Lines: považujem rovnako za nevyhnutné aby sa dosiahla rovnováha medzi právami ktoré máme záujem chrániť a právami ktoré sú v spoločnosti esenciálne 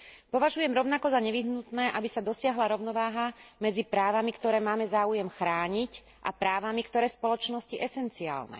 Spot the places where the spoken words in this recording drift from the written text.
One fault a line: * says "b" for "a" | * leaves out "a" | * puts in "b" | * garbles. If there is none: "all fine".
* leaves out "sú"